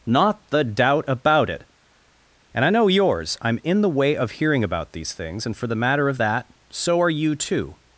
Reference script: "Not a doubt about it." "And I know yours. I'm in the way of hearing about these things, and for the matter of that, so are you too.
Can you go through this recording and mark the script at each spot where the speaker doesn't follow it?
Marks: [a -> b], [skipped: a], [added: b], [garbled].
"Not [a -> the] doubt about it." "And I know yours. I'm in the way of hearing about these things, and for the matter of that, so are you too.